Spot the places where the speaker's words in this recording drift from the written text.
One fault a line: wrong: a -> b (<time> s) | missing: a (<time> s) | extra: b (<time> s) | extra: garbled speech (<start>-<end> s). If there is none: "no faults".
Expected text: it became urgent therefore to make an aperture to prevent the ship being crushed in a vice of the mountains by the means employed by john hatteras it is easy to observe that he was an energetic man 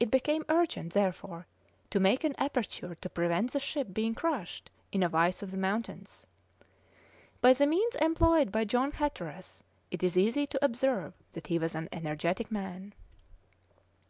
no faults